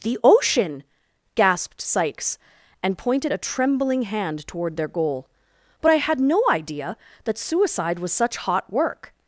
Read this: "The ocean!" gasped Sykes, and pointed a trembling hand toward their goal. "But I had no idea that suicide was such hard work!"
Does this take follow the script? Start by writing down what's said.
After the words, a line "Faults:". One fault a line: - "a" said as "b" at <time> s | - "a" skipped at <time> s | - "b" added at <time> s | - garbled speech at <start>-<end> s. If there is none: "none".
"The ocean!" gasped Sykes, and pointed a trembling hand toward their goal. "But I had no idea that suicide was such hot work!"
Faults:
- "hard" said as "hot" at 8.4 s